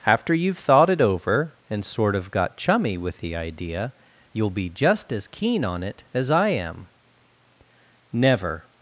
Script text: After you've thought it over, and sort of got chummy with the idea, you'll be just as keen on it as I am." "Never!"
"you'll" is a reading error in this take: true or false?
false